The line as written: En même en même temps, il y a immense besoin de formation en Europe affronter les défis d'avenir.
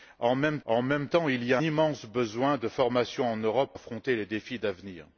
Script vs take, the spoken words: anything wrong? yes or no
no